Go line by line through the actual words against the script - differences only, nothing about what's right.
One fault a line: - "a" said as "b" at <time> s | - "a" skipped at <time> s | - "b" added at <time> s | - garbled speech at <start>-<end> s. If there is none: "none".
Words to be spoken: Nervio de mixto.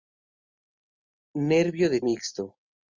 none